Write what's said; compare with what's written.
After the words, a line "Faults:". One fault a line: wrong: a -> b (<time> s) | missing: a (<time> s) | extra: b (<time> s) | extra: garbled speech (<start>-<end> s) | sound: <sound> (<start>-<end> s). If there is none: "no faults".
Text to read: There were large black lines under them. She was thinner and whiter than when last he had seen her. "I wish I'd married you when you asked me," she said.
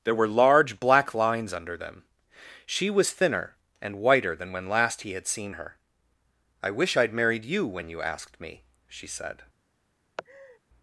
There were large black lines under them. She was thinner and whiter than when last he had seen her. "I wish I'd married you when you asked me," she said.
Faults:
sound: laugh (10.2-10.6 s)